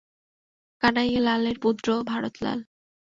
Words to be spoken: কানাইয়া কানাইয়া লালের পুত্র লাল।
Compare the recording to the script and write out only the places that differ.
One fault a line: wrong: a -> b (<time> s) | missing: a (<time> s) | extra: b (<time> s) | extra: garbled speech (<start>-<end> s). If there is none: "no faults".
missing: কানাইয়া (1.2 s)
extra: ভারত (2.1 s)